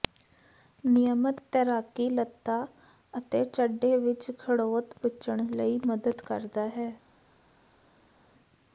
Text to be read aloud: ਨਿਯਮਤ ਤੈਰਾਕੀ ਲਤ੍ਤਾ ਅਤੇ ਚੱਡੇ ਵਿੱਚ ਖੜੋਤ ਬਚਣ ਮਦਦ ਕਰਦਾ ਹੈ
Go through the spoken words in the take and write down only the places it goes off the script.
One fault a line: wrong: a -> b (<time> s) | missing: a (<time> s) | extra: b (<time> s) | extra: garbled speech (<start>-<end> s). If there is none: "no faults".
extra: ਲਈ (5.5 s)